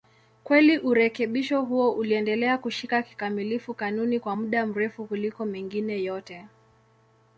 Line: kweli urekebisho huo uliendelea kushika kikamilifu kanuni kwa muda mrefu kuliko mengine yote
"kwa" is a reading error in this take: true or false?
false